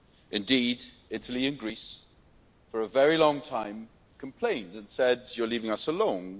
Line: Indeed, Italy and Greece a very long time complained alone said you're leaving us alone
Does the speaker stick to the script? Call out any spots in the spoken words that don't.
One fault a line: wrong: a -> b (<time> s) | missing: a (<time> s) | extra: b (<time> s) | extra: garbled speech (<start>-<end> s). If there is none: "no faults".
extra: for (2.7 s)
wrong: alone -> and (4.8 s)